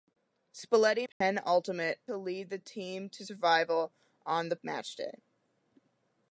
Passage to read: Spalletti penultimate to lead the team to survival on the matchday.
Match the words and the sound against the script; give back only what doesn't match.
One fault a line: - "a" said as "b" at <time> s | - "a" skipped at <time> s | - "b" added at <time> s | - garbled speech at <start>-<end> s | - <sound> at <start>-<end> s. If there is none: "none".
- dropout at 1.1-1.2 s